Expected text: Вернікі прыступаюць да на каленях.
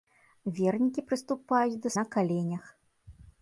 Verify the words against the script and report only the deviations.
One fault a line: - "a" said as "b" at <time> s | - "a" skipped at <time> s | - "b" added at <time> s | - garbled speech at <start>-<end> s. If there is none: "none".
none